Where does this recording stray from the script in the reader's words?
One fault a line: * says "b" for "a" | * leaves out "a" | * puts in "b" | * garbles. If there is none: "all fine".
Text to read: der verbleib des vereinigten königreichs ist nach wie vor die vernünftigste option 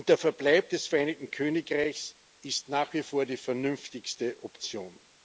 all fine